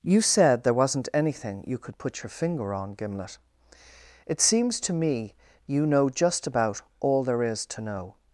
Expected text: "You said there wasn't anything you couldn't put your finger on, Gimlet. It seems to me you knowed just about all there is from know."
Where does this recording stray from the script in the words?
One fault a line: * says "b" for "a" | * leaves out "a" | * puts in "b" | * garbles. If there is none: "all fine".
* says "could" for "couldn't"
* says "know" for "knowed"
* says "to" for "from"